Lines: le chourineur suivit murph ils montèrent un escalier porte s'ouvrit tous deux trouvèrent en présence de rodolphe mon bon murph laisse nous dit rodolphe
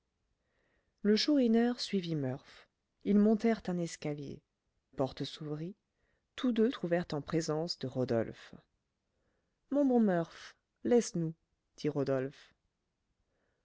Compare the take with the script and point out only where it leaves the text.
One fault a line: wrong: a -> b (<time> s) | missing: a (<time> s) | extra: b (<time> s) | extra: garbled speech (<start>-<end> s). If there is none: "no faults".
no faults